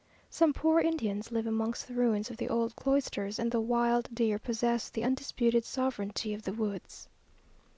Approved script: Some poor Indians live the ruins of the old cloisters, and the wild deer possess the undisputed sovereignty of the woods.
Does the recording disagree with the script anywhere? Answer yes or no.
yes